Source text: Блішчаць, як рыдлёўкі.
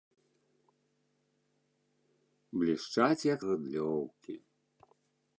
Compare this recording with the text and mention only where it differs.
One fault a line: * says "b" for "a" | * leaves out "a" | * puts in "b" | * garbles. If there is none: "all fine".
all fine